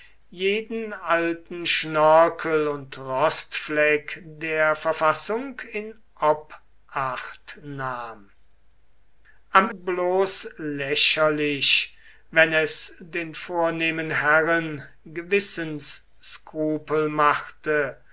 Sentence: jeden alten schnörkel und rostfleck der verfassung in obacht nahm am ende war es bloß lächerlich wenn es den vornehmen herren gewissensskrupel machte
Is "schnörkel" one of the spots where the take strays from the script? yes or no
no